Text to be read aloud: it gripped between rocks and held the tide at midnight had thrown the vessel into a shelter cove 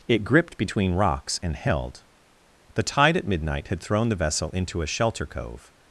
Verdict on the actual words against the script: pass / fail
pass